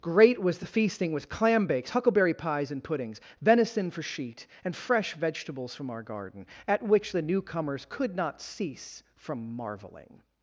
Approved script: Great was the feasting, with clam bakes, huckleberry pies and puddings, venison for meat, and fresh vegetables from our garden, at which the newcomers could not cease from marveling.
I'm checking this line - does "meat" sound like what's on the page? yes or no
no